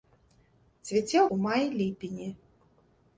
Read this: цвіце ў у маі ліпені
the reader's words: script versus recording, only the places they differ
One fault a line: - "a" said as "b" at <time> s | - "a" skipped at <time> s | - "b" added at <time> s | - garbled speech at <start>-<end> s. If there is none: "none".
none